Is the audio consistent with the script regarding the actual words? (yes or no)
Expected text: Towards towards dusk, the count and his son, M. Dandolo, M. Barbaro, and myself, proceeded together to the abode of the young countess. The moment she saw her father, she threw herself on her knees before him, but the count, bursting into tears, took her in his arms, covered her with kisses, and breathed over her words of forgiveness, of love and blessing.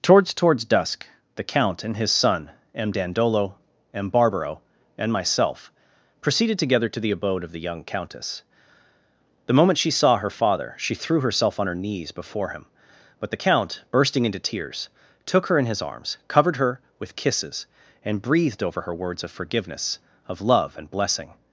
yes